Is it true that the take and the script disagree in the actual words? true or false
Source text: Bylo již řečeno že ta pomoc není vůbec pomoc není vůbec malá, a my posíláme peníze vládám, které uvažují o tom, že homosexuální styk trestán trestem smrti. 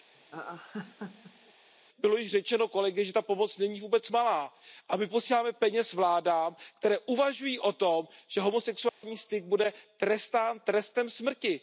true